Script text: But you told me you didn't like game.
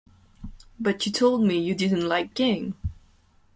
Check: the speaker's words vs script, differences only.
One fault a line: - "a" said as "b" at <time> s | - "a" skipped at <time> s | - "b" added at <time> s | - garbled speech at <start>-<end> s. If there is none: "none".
none